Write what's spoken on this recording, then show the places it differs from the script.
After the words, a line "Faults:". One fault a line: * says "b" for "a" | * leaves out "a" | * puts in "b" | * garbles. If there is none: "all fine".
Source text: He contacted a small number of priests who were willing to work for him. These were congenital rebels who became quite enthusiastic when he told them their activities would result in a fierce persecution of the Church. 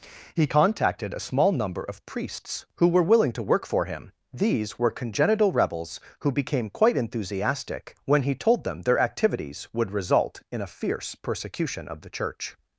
He contacted a small number of priests who were willing to work for him. These were congenital rebels who became quite enthusiastic when he told them their activities would result in a fierce persecution of the Church.
Faults:
all fine